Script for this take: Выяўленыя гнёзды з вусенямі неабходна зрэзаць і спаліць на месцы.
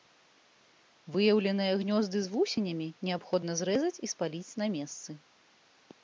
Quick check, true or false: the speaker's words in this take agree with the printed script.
true